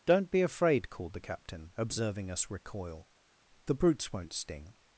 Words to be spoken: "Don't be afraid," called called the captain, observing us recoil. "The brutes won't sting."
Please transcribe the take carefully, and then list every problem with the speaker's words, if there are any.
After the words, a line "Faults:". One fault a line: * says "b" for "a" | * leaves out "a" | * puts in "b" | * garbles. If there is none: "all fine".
"Don't be afraid," called the captain, observing us recoil. "The brutes won't sting."
Faults:
* leaves out "called"